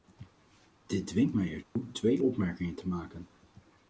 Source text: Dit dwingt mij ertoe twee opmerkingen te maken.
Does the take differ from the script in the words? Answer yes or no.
no